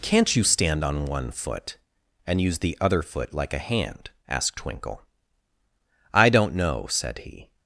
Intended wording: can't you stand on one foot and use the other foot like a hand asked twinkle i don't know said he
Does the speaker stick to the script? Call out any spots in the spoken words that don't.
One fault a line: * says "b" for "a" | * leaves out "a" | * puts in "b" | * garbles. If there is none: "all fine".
all fine